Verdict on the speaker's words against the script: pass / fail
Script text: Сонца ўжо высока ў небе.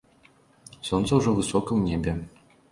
pass